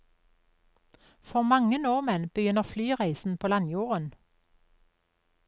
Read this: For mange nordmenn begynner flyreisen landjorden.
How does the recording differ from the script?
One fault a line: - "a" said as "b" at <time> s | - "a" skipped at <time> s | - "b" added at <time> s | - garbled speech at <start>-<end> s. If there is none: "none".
- "på" added at 3.4 s